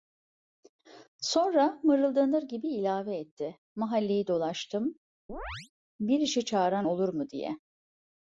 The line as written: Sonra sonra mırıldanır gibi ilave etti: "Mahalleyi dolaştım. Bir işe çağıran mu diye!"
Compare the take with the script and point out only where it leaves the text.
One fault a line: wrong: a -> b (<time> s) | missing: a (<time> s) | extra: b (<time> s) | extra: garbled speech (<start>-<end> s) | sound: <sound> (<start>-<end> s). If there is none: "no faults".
missing: sonra (1.8 s)
sound: chirp (5.3-5.7 s)
extra: olur (6.8 s)